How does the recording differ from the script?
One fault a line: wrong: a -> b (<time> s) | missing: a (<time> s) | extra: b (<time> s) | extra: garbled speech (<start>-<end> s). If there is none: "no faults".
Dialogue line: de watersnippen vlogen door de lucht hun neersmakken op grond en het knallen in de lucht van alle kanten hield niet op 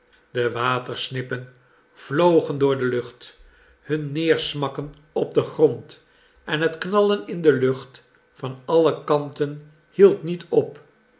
extra: den (5.3 s)